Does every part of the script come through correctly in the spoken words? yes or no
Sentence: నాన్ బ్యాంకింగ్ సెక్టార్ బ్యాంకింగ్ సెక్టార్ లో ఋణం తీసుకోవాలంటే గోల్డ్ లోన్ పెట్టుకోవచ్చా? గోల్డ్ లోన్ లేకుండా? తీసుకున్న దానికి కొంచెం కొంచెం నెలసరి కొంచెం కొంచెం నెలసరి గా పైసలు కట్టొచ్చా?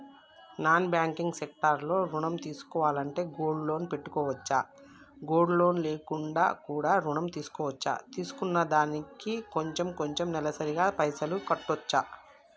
no